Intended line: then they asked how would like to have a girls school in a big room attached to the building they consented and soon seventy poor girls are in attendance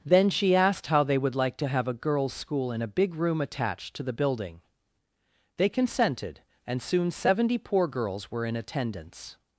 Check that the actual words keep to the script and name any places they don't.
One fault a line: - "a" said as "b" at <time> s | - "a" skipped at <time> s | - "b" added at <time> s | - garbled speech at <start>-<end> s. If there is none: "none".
- "they" said as "she" at 0.3 s
- "they" added at 1.0 s
- "are" said as "were" at 8.3 s